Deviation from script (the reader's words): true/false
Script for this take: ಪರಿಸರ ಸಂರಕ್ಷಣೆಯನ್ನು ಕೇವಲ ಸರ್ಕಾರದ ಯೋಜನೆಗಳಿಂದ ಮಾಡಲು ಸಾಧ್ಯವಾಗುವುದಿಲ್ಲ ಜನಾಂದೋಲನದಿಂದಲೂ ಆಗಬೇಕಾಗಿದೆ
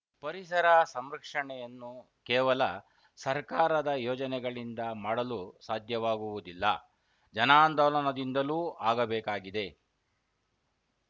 false